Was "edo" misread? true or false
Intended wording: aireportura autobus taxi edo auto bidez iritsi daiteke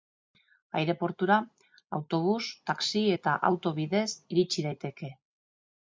true